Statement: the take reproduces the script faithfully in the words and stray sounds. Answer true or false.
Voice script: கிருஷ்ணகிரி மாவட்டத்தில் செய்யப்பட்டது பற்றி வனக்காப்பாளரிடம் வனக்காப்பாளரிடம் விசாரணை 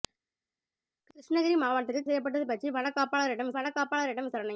true